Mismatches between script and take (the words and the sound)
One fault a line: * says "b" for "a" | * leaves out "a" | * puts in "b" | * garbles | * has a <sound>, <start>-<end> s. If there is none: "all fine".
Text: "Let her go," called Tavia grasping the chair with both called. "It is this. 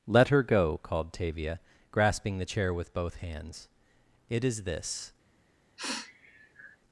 * says "hands" for "called"
* has a sniff, 5.8-6.8 s